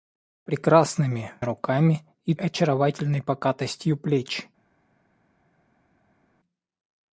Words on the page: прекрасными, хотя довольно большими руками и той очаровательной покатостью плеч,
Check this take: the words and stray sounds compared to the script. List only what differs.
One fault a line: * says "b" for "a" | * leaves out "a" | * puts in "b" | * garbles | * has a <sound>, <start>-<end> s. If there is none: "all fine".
* leaves out "хотя довольно большими"
* leaves out "той"